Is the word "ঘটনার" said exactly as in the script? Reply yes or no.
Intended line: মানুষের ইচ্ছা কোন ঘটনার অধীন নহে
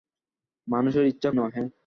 no